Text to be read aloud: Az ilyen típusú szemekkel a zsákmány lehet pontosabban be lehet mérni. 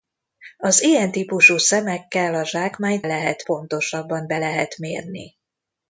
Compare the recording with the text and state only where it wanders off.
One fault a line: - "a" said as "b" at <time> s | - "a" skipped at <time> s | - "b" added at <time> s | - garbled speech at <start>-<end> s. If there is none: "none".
none